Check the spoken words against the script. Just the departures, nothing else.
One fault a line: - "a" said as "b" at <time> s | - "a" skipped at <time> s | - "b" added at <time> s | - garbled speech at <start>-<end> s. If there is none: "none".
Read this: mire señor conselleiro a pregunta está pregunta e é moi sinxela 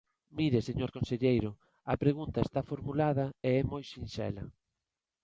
- "pregunta" said as "formulada" at 2.7 s